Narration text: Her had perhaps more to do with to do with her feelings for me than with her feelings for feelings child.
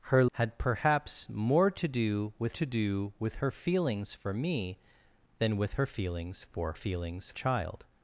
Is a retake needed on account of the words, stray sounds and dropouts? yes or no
no